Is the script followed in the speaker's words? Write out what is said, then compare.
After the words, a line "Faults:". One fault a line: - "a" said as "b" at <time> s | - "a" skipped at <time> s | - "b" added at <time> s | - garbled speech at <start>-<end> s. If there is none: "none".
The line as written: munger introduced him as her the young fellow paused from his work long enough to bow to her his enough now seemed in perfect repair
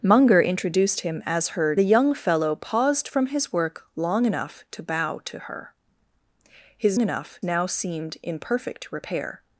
munger introduced him as her the young fellow paused from his work long enough to bow to her his enough now seemed in perfect repair
Faults:
none